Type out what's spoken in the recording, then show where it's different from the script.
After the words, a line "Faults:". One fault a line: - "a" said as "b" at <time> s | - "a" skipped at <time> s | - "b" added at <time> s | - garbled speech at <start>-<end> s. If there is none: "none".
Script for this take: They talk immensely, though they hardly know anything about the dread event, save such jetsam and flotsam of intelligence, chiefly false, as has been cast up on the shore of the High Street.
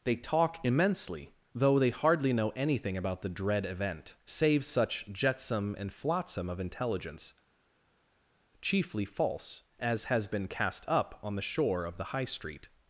They talk immensely, though they hardly know anything about the dread event, save such jetsam and flotsam of intelligence, chiefly false, as has been cast up on the shore of the High Street.
Faults:
none